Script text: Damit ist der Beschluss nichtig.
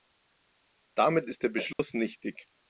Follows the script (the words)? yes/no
yes